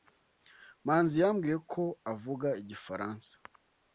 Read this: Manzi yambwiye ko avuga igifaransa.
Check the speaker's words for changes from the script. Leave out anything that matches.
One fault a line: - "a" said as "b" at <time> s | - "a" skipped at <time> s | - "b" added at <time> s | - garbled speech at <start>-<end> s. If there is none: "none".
none